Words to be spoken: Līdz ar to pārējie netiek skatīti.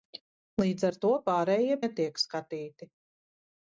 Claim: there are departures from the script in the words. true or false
false